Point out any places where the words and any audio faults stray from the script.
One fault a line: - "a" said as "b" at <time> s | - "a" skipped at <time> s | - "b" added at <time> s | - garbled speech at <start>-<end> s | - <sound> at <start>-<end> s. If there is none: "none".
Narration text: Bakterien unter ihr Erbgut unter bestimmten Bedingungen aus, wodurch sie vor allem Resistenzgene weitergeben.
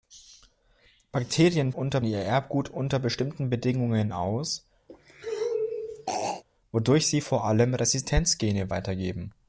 - throat clearing at 4.9-6.4 s